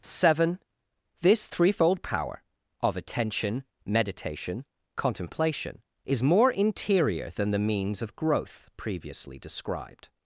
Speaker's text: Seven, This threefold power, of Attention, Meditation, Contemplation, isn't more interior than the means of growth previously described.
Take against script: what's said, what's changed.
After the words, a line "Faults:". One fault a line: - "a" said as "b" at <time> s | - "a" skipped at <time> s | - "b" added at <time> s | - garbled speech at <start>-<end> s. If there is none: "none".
Seven, This threefold power, of Attention, Meditation, Contemplation, is more interior than the means of growth previously described.
Faults:
- "isn't" said as "is" at 6.1 s